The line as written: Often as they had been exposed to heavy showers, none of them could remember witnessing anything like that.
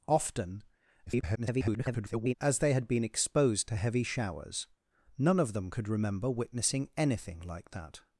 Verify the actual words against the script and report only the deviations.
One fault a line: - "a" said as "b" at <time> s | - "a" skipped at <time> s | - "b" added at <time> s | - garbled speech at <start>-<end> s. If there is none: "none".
- garbled speech at 1.1-2.3 s